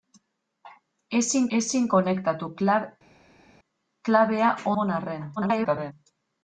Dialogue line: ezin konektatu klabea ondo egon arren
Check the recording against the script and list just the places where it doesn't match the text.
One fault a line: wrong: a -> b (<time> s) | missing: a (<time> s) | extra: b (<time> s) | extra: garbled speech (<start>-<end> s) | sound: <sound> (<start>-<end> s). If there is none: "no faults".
extra: ezin (1.6 s)
missing: ondo (4.5 s)
extra: garbled speech (5.4-5.9 s)